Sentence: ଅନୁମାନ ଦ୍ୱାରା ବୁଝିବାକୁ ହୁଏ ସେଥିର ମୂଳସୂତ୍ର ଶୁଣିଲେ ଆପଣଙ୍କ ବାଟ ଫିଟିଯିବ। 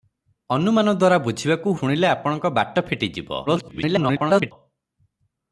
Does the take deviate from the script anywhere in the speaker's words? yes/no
yes